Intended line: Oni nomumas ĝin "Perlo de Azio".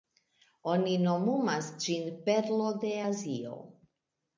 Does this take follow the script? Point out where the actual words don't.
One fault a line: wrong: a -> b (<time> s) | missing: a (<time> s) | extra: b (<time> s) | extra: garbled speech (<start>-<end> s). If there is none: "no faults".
no faults